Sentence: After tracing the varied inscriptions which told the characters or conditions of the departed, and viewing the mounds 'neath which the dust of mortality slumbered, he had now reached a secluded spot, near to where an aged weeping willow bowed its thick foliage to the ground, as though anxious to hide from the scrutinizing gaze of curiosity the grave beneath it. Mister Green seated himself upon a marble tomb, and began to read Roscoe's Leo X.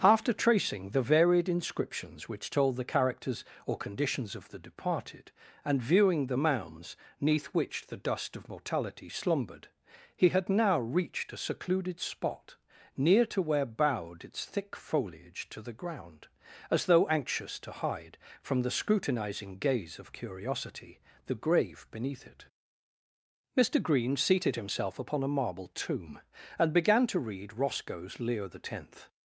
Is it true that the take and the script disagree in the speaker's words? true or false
true